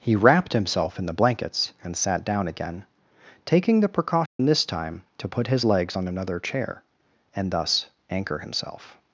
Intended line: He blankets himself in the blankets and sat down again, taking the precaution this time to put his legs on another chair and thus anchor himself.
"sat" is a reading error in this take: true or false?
false